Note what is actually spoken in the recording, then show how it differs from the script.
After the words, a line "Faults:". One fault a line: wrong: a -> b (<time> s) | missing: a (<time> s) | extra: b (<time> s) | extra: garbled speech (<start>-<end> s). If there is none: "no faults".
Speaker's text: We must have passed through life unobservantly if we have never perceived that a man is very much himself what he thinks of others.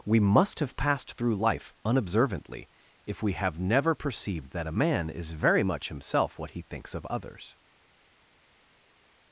We must have passed through life unobservantly if we have never perceived that a man is very much himself what he thinks of others.
Faults:
no faults